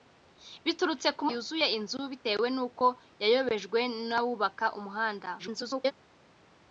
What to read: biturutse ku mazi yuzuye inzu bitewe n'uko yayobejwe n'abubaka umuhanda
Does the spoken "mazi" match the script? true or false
false